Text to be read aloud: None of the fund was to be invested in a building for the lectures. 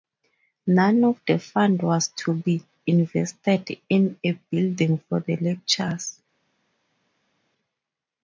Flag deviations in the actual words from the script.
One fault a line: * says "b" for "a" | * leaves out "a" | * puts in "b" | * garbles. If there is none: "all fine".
all fine